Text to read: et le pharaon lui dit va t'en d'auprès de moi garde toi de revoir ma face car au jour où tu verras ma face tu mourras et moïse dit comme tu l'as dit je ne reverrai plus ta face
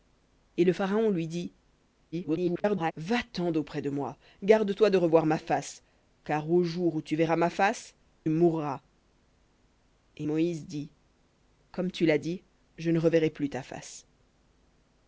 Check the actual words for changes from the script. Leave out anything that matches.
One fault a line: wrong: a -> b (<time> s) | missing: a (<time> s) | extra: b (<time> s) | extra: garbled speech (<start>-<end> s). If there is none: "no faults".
extra: garbled speech (2.1-2.9 s)
missing: tu (8.0 s)